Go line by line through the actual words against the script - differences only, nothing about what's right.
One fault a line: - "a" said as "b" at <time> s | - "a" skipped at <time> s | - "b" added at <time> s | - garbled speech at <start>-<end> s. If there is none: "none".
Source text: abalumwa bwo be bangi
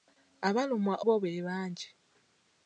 none